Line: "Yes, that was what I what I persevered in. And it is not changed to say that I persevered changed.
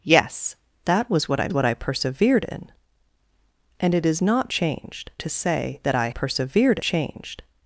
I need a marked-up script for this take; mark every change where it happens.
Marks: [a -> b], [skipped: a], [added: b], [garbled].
"Yes, that was what I what I persevered in. And it is not changed to say that I persevered changed.